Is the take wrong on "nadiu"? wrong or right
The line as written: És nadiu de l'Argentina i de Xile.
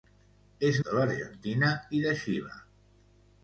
wrong